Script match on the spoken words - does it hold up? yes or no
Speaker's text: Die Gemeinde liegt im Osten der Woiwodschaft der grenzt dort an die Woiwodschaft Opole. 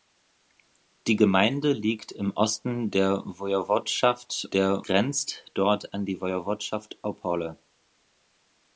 yes